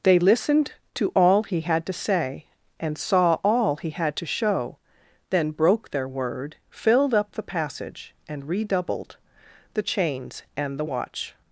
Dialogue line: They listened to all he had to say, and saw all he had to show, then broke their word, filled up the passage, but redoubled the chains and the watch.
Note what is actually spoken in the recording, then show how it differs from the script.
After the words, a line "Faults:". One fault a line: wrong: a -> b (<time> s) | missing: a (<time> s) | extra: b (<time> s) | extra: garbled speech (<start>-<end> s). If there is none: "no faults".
They listened to all he had to say, and saw all he had to show, then broke their word, filled up the passage, and redoubled the chains and the watch.
Faults:
wrong: but -> and (8.3 s)